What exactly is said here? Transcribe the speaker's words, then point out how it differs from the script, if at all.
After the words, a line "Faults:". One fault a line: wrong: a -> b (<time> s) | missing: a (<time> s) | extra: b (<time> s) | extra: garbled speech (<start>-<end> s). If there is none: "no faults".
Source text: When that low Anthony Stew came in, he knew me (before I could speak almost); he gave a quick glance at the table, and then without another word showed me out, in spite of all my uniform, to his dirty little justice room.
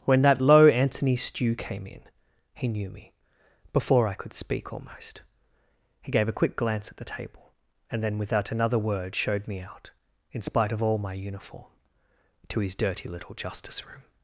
When that low Anthony Stew came in, he knew me (before I could speak almost); he gave a quick glance at the table, and then without another word showed me out, in spite of all my uniform, to his dirty little justice room.
Faults:
no faults